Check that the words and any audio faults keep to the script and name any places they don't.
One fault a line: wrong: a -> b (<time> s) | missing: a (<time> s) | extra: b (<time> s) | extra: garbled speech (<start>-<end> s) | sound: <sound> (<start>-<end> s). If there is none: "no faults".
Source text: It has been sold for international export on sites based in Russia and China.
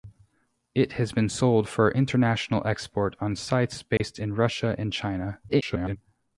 sound: dropout (4.0-4.0 s)
extra: garbled speech (5.5-6.0 s)